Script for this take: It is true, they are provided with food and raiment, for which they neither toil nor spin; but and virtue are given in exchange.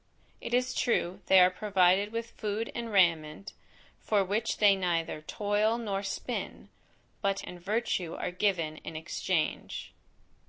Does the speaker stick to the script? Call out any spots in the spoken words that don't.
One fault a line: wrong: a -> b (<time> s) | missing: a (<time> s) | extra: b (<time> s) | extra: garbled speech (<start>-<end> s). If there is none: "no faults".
no faults